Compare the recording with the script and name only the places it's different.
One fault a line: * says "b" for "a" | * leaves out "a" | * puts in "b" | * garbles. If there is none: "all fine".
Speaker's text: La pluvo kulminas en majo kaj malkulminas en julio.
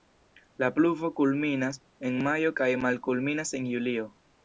all fine